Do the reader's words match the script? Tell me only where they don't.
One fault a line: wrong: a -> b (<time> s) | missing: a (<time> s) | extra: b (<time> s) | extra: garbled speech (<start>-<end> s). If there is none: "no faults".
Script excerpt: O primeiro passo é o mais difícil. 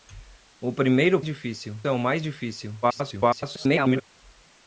wrong: passo -> difícil (1.3 s)
extra: garbled speech (2.8-4.0 s)